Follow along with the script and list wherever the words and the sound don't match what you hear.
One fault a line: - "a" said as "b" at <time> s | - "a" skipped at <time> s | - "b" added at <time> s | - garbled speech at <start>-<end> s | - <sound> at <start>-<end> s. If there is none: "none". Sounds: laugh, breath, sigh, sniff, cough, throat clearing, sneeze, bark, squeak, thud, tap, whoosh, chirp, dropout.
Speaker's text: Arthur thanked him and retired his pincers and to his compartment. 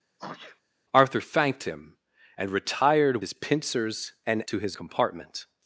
- sneeze at 0.2-0.6 s